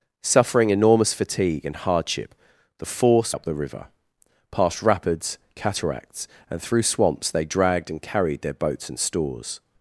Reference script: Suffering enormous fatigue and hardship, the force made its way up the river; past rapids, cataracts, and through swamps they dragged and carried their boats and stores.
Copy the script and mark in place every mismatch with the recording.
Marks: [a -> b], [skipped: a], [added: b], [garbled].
Suffering enormous fatigue and hardship, the force [skipped: made its way] up the river; past rapids, cataracts, and through swamps they dragged and carried their boats and stores.